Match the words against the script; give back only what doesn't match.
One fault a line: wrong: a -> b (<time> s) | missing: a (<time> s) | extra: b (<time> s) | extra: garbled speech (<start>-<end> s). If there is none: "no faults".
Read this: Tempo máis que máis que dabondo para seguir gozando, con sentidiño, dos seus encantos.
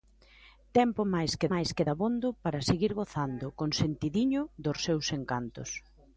no faults